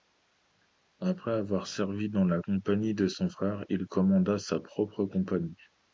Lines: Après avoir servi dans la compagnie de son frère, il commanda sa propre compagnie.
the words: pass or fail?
pass